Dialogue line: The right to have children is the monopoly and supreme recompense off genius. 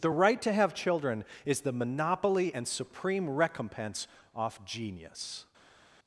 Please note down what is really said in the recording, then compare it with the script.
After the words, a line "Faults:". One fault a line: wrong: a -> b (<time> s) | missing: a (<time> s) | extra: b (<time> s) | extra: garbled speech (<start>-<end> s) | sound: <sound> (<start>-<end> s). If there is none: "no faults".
The right to have children is the monopoly and supreme recompense off genius.
Faults:
no faults